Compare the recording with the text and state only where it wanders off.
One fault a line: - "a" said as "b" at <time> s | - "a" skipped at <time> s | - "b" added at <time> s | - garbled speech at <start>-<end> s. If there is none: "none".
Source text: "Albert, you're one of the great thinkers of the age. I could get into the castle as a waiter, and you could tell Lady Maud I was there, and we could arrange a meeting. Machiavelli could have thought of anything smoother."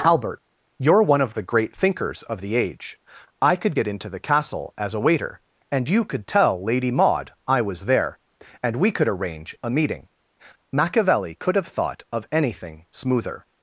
none